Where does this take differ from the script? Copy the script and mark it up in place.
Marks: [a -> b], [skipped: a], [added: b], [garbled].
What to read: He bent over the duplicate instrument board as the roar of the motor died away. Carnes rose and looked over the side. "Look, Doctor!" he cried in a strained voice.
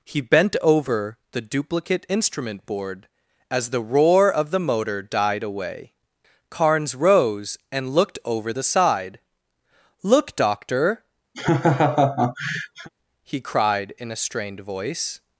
He bent over the duplicate instrument board as the roar of the motor died away. Carnes rose and looked over the side. "Look, Doctor!" he cried in a strained voice.